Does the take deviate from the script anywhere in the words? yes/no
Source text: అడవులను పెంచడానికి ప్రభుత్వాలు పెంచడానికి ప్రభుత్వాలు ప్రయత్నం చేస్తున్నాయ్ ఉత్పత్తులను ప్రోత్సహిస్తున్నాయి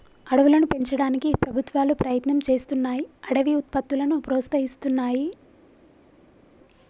yes